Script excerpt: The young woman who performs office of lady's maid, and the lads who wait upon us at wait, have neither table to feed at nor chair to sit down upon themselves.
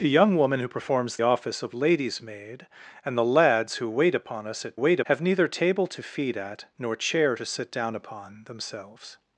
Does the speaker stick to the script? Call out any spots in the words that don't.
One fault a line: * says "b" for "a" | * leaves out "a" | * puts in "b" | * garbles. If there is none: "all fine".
all fine